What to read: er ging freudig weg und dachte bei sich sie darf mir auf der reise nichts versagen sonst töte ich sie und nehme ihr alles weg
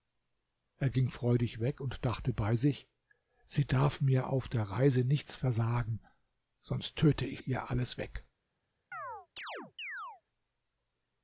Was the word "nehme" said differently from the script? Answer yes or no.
yes